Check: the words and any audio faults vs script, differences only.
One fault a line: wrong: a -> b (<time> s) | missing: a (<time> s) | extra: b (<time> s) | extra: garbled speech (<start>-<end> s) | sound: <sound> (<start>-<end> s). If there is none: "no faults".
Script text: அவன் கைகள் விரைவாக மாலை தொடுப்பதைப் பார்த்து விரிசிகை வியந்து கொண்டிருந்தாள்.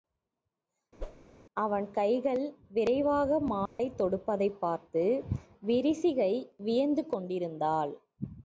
sound: whoosh (1.0-1.3 s)
sound: dropout (3.7-3.8 s)